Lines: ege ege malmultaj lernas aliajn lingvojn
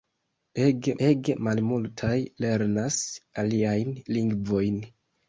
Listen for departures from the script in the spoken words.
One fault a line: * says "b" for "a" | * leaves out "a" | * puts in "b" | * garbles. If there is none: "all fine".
all fine